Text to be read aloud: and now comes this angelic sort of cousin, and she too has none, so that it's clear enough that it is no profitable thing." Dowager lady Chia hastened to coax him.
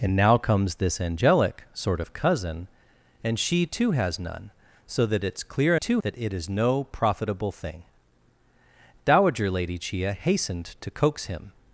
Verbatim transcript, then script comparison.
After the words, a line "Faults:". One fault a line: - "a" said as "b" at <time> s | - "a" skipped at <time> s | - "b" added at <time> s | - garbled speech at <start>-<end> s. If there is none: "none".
and now comes this angelic sort of cousin, and she too has none, so that it's clear too that it is no profitable thing." Dowager lady Chia hastened to coax him.
Faults:
- "enough" said as "too" at 5.7 s